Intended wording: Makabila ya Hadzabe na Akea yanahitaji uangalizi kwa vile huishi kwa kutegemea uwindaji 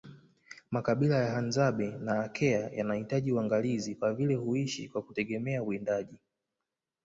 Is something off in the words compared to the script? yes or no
no